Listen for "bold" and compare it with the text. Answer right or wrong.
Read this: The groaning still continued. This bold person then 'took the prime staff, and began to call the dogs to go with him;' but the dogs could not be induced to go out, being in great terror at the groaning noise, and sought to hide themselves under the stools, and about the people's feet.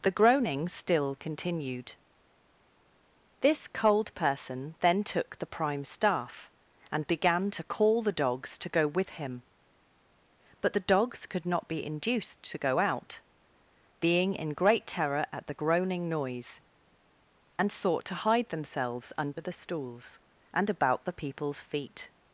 wrong